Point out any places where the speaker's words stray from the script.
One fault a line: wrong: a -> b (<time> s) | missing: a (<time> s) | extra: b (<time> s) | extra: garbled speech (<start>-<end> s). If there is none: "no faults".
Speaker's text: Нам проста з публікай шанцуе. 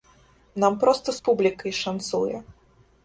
no faults